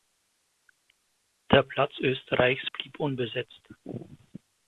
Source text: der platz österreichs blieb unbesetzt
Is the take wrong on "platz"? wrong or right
right